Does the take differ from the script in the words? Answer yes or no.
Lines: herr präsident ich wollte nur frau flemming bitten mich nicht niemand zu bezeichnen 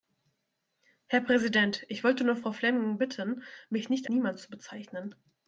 no